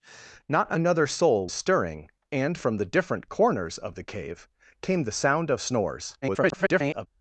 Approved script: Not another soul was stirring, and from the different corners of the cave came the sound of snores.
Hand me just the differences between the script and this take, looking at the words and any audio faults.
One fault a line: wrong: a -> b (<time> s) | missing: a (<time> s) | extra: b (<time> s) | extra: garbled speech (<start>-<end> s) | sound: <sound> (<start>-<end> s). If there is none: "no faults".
missing: was (1.5 s)
extra: garbled speech (6.2-7.1 s)